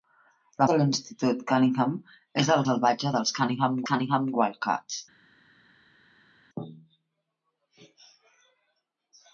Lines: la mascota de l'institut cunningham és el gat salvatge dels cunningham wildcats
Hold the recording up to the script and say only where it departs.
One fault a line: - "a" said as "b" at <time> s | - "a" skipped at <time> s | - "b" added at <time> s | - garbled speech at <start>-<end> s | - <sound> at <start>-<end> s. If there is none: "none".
- "mascota" skipped at 0.7 s
- "gat" skipped at 2.6 s
- "cunningham" added at 3.9 s